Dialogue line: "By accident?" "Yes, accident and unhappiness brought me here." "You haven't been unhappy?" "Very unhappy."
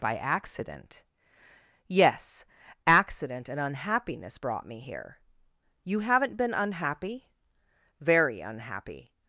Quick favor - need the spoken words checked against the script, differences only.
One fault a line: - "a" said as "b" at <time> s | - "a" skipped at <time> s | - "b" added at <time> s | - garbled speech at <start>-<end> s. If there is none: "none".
none